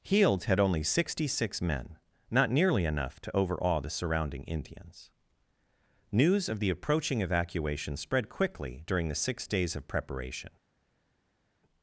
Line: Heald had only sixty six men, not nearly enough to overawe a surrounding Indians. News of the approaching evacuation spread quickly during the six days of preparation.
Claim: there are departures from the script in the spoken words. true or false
true